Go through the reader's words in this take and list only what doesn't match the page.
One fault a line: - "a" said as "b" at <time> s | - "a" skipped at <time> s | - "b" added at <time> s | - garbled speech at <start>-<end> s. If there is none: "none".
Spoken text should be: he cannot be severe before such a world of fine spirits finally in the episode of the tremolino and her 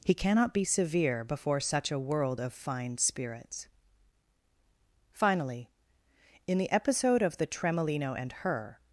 none